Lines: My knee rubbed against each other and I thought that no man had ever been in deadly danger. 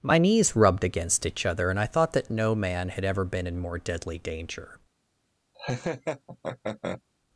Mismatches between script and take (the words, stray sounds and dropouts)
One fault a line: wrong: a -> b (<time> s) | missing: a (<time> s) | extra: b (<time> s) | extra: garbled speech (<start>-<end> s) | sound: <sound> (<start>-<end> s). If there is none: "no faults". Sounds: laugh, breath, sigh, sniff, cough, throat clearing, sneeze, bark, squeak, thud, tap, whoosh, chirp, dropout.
wrong: knee -> knees (0.2 s)
extra: more (3.6 s)
sound: laugh (5.5-7.0 s)